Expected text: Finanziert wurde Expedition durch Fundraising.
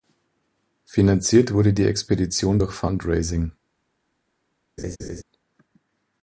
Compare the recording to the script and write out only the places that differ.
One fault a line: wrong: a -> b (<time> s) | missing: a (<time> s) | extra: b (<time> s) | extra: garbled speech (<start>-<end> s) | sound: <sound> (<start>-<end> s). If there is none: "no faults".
extra: die (1.7 s)
sound: laugh (4.8-5.2 s)